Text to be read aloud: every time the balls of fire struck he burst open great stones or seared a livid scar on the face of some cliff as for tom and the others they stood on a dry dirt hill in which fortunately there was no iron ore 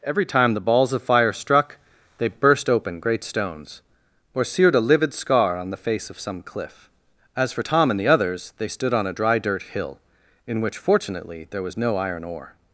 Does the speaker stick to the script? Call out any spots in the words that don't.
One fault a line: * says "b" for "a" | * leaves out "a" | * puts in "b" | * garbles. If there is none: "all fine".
* says "they" for "he"